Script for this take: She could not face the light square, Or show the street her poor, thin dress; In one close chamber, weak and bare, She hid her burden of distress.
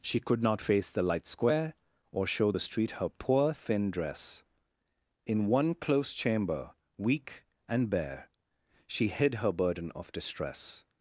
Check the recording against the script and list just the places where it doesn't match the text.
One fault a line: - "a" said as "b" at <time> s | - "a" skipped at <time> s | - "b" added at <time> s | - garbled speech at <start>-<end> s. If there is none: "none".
none